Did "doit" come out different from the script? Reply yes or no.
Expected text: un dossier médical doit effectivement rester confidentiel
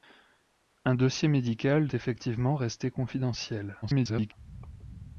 yes